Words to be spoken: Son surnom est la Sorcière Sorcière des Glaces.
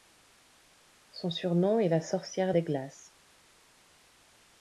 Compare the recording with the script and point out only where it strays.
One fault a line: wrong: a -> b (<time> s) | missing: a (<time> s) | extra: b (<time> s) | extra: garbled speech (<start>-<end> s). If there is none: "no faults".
missing: Sorcière (2.5 s)